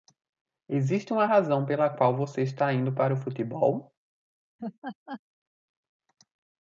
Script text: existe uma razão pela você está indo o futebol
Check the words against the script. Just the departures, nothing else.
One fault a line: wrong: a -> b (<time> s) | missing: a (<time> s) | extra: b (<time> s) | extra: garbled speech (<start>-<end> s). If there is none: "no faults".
extra: qual (1.9 s)
extra: para (2.9 s)